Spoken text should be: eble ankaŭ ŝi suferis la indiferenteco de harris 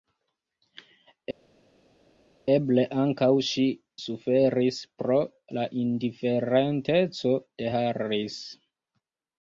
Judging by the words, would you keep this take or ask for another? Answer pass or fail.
fail